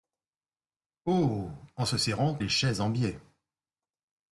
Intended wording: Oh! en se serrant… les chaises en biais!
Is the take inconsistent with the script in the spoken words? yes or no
no